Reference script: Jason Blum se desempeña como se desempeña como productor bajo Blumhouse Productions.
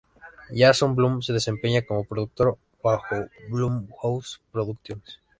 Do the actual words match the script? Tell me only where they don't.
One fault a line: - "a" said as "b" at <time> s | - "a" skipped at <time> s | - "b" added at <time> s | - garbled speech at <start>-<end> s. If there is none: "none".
- "se desempeña como" skipped at 2.0 s